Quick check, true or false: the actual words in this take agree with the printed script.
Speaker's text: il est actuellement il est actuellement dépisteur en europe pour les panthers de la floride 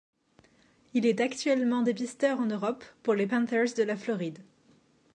false